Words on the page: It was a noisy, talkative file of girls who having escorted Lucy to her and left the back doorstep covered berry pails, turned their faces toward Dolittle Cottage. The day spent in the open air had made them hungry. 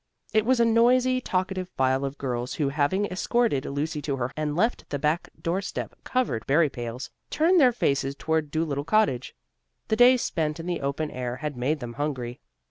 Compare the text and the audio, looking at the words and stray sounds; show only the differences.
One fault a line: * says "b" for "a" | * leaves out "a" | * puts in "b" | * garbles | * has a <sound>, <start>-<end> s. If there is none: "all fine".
all fine